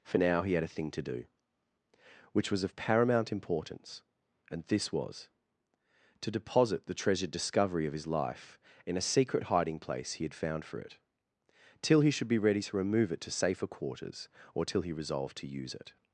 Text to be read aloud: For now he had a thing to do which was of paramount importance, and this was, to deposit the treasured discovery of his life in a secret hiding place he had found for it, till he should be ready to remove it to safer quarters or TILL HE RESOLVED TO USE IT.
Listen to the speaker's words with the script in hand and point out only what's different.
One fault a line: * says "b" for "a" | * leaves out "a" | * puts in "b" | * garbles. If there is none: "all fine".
all fine